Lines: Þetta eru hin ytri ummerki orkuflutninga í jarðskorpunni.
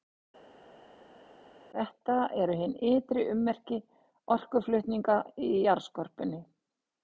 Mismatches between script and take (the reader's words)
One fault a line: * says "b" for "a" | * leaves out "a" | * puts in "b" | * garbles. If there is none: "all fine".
all fine